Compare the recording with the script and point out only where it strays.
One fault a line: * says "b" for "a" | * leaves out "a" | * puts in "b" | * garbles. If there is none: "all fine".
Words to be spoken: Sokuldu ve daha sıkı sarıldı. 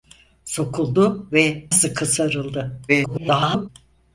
* leaves out "daha"
* garbles